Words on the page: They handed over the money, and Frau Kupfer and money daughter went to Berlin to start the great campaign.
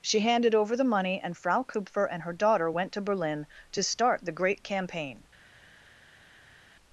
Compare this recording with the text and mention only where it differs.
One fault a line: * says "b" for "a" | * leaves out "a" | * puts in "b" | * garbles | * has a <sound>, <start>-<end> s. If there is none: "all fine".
* says "She" for "They"
* says "her" for "money"